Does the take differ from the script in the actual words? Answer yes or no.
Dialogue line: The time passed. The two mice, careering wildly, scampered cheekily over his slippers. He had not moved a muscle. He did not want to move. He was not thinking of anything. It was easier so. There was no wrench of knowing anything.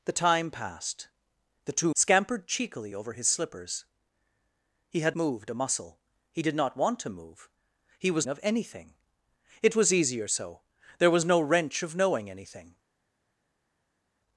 yes